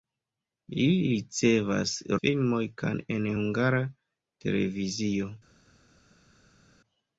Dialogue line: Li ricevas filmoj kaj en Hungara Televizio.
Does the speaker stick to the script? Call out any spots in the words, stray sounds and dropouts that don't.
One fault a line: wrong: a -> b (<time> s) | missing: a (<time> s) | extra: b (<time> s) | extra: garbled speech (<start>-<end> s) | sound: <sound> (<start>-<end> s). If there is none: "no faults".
no faults